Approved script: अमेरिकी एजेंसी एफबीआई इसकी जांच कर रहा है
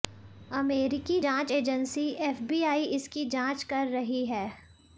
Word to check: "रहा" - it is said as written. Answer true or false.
false